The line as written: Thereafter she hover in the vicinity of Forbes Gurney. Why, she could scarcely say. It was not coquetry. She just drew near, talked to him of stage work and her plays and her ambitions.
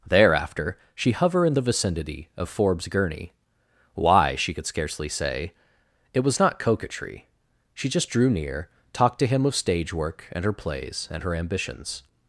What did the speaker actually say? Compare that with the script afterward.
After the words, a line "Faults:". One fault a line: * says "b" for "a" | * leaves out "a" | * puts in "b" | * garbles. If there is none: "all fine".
Thereafter she hover in the vicinity of Forbes Gurney. Why, she could scarcely say. It was not coquetry. She just drew near, talked to him of stage work and her plays and her ambitions.
Faults:
all fine